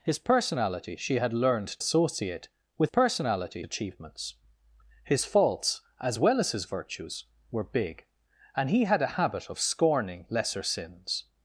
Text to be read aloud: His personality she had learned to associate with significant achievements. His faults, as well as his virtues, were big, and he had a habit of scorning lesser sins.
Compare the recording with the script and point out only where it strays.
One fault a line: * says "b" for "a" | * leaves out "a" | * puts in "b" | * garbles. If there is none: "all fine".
* leaves out "to"
* says "personality" for "significant"